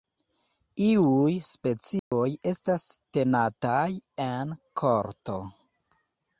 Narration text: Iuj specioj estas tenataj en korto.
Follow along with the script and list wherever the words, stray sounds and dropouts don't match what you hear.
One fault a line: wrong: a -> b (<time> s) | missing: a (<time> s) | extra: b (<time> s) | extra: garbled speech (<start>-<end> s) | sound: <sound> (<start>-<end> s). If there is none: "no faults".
sound: dropout (2.0-2.1 s)